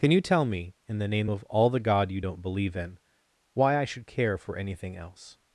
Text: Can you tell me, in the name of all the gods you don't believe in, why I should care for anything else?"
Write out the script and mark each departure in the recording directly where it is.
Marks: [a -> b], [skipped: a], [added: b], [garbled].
Can you tell me, in the name of all the [gods -> god] you don't believe in, why I should care for anything else?"